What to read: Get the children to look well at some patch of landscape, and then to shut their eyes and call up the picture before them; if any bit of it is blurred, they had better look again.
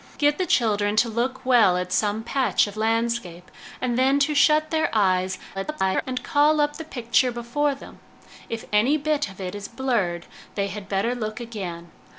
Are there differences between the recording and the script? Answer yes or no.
yes